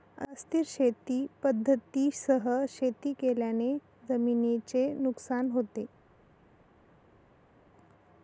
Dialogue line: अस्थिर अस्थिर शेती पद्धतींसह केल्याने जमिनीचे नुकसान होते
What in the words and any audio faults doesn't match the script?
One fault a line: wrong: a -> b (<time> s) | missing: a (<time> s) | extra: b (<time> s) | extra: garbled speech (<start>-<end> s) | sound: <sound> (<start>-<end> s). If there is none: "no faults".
missing: अस्थिर (0.6 s)
extra: शेती (2.7 s)